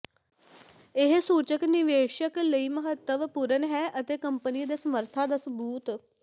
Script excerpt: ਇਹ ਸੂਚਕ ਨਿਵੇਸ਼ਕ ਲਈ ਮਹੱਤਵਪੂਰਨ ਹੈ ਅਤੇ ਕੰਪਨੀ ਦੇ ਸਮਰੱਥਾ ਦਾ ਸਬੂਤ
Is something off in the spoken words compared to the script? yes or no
no